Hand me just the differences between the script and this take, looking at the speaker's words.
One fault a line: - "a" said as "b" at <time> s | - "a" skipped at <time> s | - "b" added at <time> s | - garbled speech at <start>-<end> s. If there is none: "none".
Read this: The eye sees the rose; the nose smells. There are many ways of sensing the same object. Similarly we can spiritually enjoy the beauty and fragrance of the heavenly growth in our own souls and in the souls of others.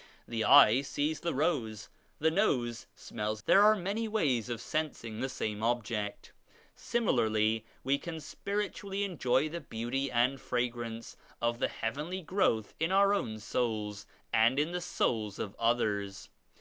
none